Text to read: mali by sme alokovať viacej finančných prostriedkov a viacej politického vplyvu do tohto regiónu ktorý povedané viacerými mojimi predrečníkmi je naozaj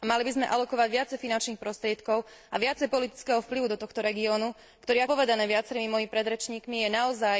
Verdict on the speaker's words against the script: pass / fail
pass